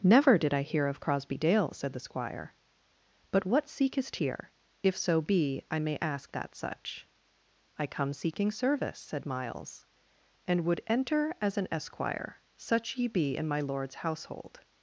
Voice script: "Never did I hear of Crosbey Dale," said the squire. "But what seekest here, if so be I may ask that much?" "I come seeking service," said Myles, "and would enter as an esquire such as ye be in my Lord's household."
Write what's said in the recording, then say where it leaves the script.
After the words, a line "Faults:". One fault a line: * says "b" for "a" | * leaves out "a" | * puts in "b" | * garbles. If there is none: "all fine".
"Never did I hear of Crosbey Dale," said the squire. "But what seekest here, if so be I may ask that such?" "I come seeking service," said Myles, "and would enter as an esquire such ye be in my Lord's household."
Faults:
* says "such" for "much"
* leaves out "as"